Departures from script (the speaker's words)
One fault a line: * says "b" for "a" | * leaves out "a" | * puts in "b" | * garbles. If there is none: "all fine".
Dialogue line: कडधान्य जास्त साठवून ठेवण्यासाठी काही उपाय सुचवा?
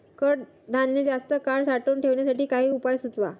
* puts in "काळ"